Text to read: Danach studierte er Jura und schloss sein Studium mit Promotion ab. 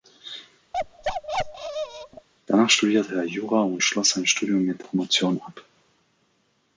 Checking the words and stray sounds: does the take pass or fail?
fail